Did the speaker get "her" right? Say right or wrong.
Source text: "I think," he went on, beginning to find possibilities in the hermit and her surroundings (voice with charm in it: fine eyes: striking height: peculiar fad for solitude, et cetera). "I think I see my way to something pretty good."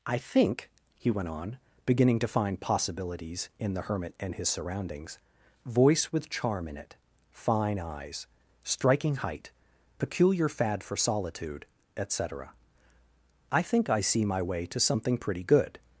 wrong